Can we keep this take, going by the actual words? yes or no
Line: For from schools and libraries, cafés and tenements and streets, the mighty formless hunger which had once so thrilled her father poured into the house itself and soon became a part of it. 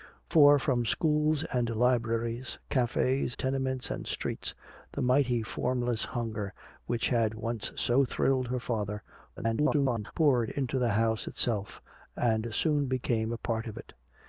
no